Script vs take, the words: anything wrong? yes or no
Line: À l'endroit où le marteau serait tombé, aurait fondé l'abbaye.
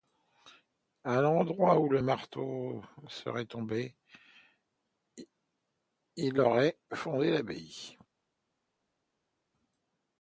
yes